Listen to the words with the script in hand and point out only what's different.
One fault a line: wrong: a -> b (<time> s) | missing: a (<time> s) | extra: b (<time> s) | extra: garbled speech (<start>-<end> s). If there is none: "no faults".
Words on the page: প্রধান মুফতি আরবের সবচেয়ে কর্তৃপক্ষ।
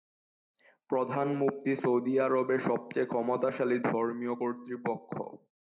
extra: সৌদি (1.8 s)
extra: ক্ষমতাশালী ধর্মীয় (3.1 s)